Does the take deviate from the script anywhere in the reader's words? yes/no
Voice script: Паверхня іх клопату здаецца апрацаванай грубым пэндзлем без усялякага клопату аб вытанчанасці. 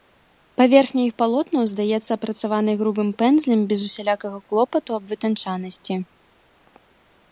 yes